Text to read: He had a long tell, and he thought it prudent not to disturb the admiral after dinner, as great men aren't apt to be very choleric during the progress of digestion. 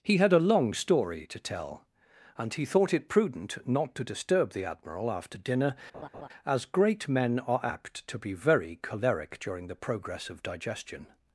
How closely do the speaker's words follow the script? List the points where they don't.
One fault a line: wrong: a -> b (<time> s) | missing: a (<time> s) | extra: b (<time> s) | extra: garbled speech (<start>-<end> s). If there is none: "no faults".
extra: story to (0.7 s)
wrong: aren't -> are (7.4 s)